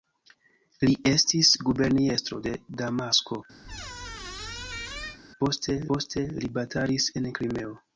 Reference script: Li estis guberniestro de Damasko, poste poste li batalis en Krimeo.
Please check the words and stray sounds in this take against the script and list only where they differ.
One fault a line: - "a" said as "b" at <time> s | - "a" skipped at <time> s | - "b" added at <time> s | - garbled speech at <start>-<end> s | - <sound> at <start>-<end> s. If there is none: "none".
- squeak at 3.6-5.2 s